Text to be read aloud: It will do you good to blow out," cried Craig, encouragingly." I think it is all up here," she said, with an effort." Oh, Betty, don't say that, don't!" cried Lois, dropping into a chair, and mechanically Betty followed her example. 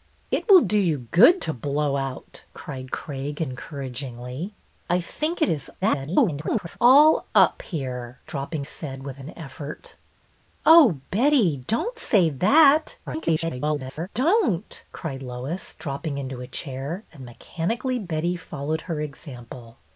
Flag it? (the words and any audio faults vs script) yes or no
yes